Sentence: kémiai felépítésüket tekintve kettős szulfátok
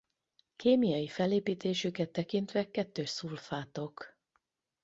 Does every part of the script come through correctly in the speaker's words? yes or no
yes